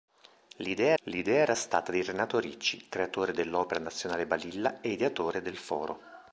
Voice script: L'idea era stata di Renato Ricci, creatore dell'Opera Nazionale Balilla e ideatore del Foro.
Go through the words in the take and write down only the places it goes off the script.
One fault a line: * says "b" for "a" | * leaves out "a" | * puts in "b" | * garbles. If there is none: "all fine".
* puts in "l'idea"